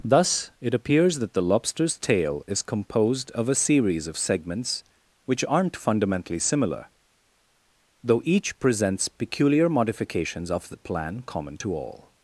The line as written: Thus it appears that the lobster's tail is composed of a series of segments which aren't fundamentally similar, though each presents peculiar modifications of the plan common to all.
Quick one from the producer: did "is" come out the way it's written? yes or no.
yes